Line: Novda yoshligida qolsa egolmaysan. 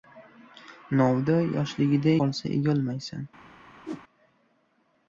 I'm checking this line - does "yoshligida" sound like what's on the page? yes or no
yes